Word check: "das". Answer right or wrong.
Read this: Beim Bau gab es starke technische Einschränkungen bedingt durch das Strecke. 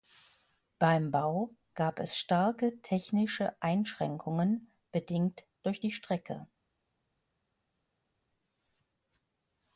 wrong